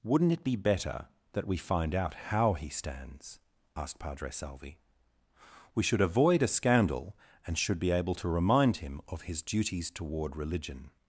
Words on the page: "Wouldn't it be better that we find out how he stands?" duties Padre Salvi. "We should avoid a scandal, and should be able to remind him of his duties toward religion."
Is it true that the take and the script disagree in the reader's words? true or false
true